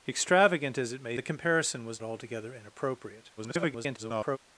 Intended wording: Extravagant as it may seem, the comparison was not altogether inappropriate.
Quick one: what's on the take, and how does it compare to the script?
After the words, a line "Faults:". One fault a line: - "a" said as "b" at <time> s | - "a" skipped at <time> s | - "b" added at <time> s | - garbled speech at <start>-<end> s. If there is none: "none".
Extravagant as it may the comparison was altogether inappropriate. [garbled]
Faults:
- "seem" skipped at 1.1 s
- "not" skipped at 2.0 s
- garbled speech at 3.4-4.4 s